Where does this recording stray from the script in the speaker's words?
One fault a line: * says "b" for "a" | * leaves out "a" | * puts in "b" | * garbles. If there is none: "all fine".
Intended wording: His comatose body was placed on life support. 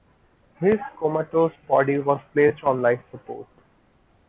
all fine